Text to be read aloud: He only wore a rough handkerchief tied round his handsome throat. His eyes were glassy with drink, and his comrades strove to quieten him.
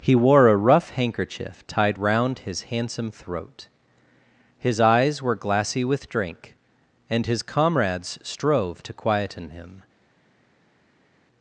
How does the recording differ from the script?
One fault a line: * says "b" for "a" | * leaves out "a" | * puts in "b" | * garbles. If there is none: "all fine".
* leaves out "only"